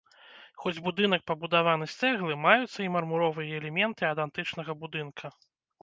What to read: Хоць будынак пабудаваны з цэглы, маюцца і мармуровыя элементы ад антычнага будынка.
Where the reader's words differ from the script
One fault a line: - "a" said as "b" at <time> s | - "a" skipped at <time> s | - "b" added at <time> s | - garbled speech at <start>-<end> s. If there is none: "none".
none